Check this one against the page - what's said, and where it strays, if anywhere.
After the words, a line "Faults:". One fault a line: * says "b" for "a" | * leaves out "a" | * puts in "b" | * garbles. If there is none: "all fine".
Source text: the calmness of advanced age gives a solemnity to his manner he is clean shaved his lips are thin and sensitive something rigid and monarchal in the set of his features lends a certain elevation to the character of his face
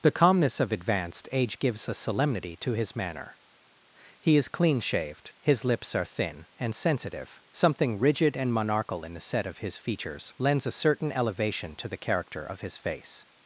the calmness of advanced age gives a solemnity to his manner he is clean shaved his lips are thin and sensitive something rigid and monarchal in the set of his features lends a certain elevation to the character of his face
Faults:
all fine